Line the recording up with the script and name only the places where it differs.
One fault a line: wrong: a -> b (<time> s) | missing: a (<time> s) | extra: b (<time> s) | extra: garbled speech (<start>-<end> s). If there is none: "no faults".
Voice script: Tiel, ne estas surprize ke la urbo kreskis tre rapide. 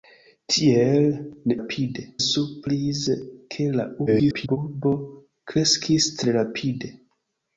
wrong: estas -> rapide (1.6 s)
extra: garbled speech (4.1-4.6 s)